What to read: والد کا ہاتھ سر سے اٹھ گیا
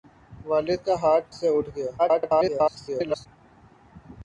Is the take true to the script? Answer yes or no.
no